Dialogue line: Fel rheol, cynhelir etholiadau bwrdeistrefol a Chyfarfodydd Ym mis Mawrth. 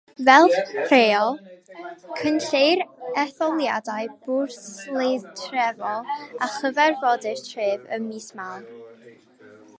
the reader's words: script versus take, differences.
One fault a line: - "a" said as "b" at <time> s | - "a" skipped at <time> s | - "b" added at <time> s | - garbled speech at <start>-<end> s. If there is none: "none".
- "Tref" added at 7.5 s